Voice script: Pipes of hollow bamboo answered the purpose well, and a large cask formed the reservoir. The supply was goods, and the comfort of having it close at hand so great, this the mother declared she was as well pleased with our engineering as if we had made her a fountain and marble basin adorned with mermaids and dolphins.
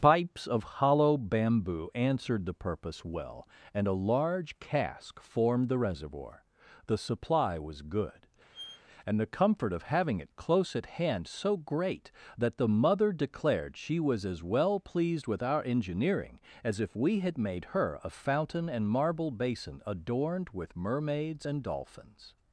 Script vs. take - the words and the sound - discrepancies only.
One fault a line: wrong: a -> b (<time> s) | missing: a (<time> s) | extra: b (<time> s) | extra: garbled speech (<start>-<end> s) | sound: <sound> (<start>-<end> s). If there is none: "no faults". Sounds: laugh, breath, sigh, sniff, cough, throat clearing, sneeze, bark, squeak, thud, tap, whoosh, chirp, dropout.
wrong: goods -> good (7.8 s)
sound: squeak (8.5-8.8 s)
wrong: this -> that (12.4 s)